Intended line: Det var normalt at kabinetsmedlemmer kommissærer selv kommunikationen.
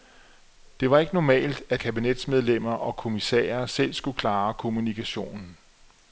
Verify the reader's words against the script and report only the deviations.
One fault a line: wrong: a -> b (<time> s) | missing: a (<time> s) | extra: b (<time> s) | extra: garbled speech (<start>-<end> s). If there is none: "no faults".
extra: ikke (1.0 s)
extra: og (2.7 s)
extra: skulle klare (3.9 s)